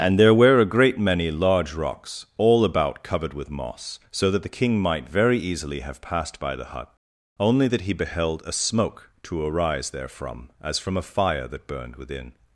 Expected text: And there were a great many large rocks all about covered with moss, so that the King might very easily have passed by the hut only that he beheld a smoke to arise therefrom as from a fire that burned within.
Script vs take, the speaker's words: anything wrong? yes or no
no